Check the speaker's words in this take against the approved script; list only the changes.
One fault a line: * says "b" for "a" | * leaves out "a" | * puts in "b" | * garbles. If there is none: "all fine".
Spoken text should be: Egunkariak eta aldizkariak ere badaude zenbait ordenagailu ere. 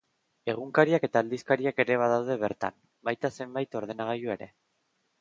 * puts in "bertan baita"